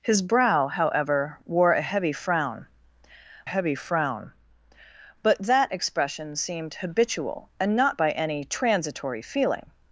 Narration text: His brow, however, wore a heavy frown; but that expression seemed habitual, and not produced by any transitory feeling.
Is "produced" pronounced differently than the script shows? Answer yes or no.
yes